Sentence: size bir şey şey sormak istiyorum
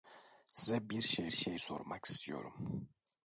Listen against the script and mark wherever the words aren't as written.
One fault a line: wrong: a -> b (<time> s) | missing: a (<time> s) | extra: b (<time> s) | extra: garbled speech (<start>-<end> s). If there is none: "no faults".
no faults